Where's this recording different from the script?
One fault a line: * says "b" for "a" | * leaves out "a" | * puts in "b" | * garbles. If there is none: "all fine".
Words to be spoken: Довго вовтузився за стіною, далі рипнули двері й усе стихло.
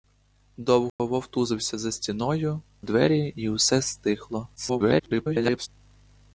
* leaves out "далі рипнули"
* garbles